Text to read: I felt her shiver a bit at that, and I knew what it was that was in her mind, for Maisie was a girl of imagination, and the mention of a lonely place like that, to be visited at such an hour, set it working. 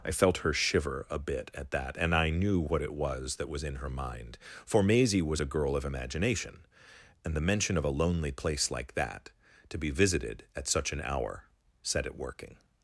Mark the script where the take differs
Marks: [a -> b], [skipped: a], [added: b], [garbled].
I felt her shiver a bit at that, and I knew what it was that was in her mind, for Maisie was a girl of imagination, and the mention of a lonely place like that, to be visited at such an hour, set it working.